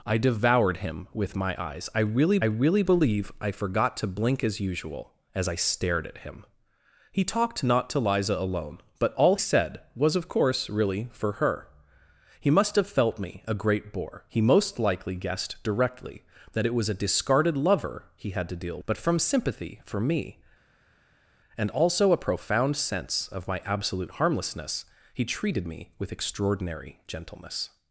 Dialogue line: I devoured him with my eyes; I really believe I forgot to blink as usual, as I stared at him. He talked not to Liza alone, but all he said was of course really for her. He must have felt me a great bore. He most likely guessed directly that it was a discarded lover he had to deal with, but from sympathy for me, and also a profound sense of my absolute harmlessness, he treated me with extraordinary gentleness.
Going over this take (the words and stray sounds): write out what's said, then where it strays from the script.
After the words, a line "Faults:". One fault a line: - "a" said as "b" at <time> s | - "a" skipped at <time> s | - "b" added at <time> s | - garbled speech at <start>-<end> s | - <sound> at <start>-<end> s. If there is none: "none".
I devoured him with my eyes; I really really believe I forgot to blink as usual, as I stared at him. He talked not to Liza alone, but all said was of course really for her. He must have felt me a great bore. He most likely guessed directly that it was a discarded lover he had to deal but from sympathy for me, and also a profound sense of my absolute harmlessness, he treated me with extraordinary gentleness.
Faults:
- "really" added at 2.4 s
- "he" skipped at 9.4 s
- "with" skipped at 18.8 s